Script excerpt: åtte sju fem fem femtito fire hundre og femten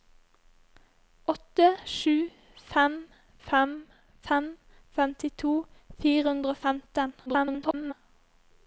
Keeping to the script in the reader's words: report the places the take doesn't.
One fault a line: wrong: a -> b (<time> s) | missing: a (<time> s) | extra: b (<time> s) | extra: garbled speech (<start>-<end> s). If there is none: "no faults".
extra: fem (4.3 s)
extra: garbled speech (7.3-7.9 s)